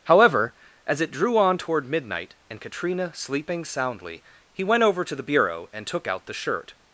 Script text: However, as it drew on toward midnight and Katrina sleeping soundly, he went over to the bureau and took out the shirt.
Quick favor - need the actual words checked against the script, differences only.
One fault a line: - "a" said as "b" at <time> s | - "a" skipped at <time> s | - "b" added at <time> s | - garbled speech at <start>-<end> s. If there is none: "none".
none